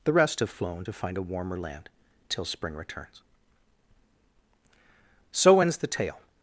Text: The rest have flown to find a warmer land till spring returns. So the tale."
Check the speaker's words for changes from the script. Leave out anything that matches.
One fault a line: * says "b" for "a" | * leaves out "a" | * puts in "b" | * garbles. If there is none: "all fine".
* puts in "ends"